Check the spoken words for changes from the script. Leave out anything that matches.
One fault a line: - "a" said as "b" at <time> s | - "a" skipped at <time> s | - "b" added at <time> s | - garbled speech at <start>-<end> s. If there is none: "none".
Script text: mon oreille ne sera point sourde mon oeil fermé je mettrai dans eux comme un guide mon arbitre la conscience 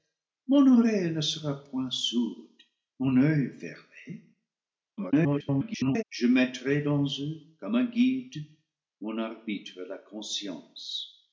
- garbled speech at 5.0-6.0 s